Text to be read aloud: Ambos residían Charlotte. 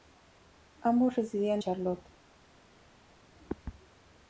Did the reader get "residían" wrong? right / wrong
right